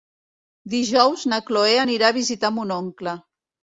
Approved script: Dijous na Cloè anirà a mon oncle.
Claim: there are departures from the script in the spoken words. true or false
true